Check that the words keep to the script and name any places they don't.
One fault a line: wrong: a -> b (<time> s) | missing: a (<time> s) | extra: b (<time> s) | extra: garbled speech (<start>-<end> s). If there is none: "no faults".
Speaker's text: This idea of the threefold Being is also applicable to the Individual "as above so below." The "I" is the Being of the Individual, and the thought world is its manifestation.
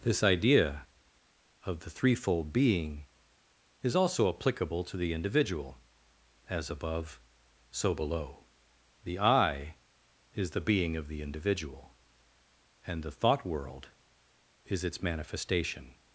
no faults